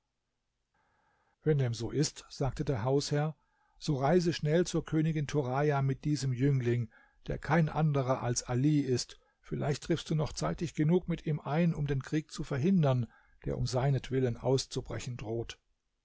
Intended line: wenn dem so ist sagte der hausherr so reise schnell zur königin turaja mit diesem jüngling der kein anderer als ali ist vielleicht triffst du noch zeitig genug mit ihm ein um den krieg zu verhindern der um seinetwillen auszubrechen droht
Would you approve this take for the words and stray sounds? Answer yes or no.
yes